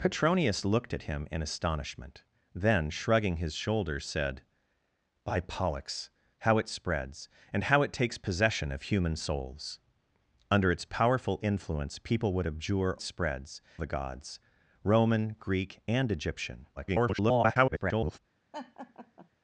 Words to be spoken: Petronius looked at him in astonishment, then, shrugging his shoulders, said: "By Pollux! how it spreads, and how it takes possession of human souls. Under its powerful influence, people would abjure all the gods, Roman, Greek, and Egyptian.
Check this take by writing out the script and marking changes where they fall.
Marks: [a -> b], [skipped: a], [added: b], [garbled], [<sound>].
Petronius looked at him in astonishment, then, shrugging his shoulders, said: "By Pollux! how it spreads, and how it takes possession of human souls. Under its powerful influence, people would abjure [all -> spreads] the gods, Roman, Greek, and Egyptian. [garbled] [laugh]